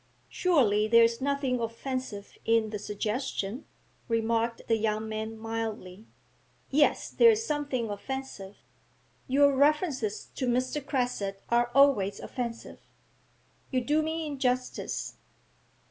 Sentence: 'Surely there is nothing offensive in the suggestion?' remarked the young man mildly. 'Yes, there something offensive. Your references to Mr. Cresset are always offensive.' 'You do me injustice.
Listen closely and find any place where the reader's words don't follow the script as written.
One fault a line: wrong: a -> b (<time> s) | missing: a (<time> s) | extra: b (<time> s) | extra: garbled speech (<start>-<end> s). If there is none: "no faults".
extra: is (7.3 s)